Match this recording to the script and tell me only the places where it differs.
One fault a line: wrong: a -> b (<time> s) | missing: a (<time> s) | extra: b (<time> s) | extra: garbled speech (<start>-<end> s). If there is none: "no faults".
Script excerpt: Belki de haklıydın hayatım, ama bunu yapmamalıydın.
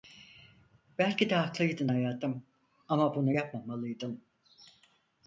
no faults